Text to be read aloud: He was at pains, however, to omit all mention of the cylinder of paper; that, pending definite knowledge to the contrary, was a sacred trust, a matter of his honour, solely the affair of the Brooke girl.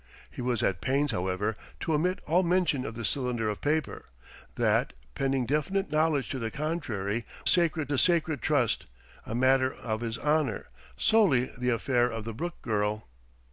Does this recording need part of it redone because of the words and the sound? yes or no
yes